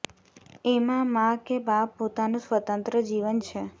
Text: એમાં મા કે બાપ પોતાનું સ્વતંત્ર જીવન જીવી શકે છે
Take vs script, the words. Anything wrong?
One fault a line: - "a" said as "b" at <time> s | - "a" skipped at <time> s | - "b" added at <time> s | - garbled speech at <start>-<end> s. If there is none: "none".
- "જીવી શકે" skipped at 3.4 s